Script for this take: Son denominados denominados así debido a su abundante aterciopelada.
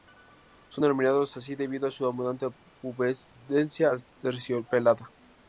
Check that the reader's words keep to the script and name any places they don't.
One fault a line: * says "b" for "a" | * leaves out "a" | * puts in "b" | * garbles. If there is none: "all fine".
* leaves out "denominados"
* puts in "pubescencia"